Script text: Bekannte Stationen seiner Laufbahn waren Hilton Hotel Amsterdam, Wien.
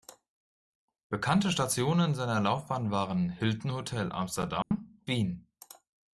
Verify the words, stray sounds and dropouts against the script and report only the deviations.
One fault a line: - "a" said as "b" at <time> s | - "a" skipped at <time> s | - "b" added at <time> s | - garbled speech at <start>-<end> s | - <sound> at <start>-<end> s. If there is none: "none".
- dropout at 4.6-4.7 s